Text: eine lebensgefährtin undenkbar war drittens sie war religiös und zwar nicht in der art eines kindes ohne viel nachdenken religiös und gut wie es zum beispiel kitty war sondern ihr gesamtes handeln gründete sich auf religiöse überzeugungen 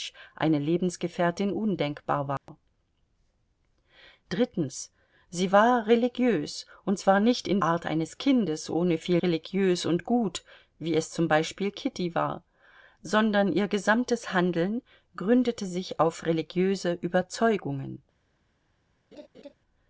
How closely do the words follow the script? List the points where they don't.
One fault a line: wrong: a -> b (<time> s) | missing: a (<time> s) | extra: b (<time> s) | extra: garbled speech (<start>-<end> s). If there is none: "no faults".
missing: der (7.6 s)
missing: nachdenken (9.2 s)